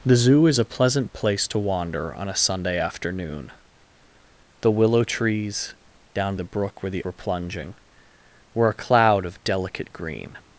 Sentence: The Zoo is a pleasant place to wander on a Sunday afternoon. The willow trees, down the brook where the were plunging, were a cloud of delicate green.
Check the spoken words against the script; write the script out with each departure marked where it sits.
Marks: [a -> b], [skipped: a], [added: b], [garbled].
The Zoo is a pleasant place to wander on a Sunday afternoon. The willow trees, down the brook where the were plunging, were a cloud of delicate green.